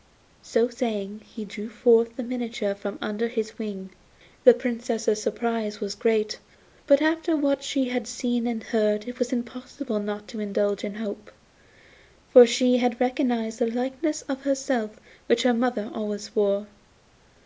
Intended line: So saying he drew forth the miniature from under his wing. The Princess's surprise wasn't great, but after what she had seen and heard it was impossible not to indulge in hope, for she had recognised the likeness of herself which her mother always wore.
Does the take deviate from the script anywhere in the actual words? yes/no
yes